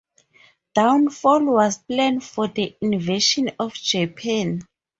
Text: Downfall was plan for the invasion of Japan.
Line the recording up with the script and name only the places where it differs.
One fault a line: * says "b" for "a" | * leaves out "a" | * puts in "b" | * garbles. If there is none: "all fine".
all fine